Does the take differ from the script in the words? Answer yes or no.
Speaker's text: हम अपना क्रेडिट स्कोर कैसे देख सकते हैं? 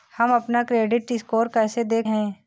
yes